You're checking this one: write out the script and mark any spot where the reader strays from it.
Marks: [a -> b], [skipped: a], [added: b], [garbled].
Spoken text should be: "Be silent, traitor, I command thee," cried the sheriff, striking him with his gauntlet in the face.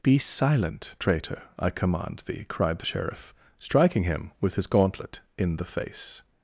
"Be silent, traitor, I command thee," cried the sheriff, striking him with his gauntlet in the face.